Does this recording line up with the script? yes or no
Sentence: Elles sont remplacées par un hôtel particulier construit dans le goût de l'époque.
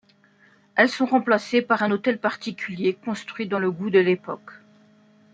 yes